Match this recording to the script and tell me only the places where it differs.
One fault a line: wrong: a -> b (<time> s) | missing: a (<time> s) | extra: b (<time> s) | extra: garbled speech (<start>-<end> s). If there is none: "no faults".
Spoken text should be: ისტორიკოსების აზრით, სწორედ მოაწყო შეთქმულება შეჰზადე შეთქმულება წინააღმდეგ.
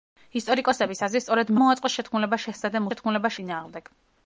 no faults